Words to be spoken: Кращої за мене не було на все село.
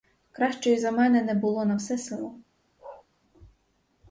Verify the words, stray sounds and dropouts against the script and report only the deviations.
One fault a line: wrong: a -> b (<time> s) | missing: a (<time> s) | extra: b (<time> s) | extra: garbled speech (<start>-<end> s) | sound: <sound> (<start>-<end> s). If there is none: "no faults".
sound: bark (2.8-3.1 s)